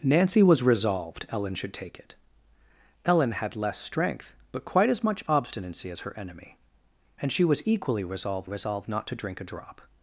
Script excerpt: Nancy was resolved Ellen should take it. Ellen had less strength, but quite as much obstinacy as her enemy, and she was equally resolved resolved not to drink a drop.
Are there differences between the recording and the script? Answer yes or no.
no